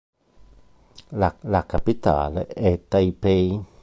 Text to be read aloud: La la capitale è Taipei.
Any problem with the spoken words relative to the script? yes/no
no